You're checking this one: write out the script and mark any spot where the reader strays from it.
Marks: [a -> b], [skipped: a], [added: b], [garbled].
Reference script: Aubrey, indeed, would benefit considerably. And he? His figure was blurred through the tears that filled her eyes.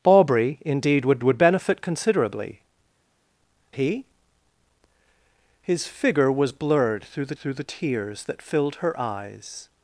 Aubrey, indeed, would [added: would] benefit considerably. [skipped: And] he? His figure was blurred through the [added: through the] tears that filled her eyes.